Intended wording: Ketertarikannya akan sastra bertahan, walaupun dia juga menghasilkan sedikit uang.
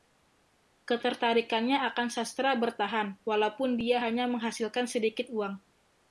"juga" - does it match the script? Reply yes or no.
no